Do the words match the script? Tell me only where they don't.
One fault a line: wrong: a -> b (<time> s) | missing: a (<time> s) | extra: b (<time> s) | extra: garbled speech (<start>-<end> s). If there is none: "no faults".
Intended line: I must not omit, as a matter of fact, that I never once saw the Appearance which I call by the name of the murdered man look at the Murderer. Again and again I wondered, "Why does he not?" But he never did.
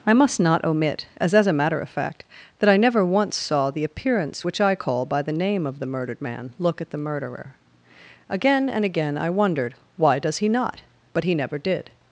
extra: as (1.4 s)